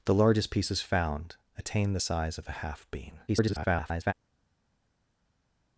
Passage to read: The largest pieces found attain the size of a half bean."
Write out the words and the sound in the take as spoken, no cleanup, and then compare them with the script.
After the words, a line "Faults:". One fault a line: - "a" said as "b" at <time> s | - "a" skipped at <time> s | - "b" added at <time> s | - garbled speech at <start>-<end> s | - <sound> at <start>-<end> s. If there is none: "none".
The largest pieces found attain the size of a half bean." [garbled]
Faults:
- garbled speech at 3.3-4.1 s